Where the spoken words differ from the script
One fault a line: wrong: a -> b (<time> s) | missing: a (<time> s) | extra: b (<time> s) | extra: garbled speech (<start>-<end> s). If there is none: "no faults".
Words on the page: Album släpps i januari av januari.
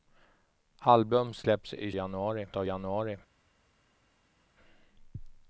no faults